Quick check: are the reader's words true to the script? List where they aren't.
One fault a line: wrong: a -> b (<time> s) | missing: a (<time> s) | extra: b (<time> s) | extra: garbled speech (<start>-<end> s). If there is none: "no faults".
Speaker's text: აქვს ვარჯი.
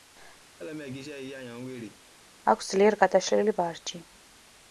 extra: ძლიერ გადაშლილი (2.7 s)